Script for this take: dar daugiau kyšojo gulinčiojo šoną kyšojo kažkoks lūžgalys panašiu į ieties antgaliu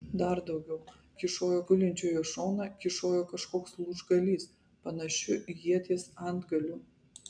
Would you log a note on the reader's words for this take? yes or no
no